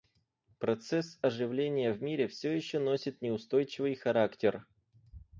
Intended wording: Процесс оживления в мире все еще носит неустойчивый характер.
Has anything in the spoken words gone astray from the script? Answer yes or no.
no